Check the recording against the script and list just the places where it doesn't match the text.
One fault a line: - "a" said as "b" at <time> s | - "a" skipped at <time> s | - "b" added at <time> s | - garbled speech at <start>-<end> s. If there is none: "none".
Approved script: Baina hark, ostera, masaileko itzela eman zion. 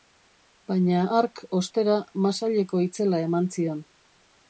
none